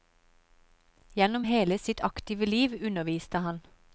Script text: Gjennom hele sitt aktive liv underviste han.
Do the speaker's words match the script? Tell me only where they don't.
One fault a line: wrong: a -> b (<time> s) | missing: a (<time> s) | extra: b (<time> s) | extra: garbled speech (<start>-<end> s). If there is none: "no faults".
no faults